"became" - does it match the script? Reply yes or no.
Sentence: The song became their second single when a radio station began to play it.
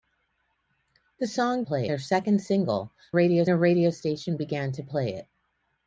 no